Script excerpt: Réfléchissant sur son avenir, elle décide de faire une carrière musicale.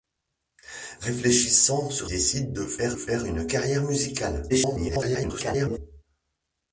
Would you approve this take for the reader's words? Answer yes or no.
no